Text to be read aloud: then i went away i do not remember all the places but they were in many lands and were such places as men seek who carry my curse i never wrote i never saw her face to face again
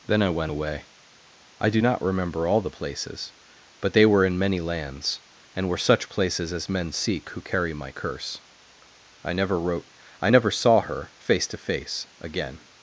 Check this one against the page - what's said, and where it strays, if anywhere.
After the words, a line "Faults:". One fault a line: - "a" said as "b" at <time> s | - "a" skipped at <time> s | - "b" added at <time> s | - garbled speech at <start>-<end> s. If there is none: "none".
then i went away i do not remember all the places but they were in many lands and were such places as men seek who carry my curse i never wrote i never saw her face to face again
Faults:
none